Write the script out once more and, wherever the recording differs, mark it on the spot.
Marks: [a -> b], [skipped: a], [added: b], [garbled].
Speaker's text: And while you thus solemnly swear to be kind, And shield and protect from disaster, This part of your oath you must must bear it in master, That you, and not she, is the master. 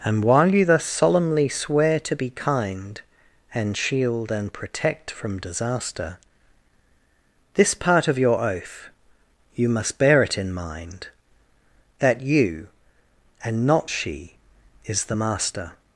And while you thus solemnly swear to be kind, And shield and protect from disaster, This part of your oath you must [skipped: must] bear it in [master, -> mind] That you, and not she, is the master.